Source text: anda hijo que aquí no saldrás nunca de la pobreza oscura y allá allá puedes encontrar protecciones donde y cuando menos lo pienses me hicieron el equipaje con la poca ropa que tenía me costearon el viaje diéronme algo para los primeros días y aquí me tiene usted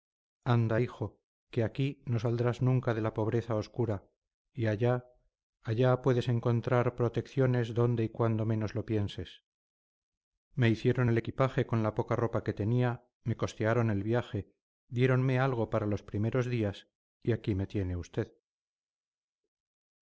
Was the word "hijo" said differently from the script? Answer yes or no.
no